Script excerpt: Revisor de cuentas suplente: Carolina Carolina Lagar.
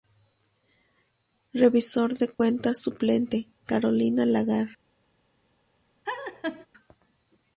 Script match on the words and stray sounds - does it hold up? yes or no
no